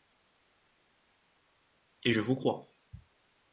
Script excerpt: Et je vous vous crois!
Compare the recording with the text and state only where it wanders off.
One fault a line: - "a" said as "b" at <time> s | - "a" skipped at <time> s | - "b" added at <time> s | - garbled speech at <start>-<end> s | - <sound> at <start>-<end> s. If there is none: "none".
- "vous" skipped at 2.3 s